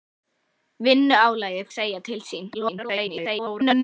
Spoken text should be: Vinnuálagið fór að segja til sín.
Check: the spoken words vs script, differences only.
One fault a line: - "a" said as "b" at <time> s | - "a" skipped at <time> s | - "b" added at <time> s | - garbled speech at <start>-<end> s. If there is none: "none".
- "fór" skipped at 1.7 s
- garbled speech at 2.5-3.8 s